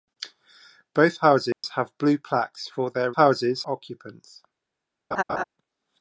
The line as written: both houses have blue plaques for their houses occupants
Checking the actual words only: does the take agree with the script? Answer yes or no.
yes